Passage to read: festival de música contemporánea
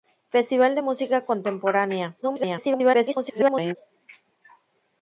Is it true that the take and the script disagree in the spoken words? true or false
true